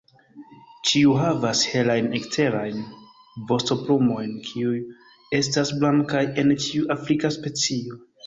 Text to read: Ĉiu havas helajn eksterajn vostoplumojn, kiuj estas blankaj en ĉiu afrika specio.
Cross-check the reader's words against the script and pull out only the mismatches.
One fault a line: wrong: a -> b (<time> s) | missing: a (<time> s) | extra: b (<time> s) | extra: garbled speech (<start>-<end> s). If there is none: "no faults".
no faults